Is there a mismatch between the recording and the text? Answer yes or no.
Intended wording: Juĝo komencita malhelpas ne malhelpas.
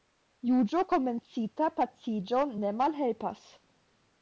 yes